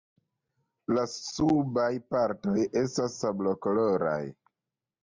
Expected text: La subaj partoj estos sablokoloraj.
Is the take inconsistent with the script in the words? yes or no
yes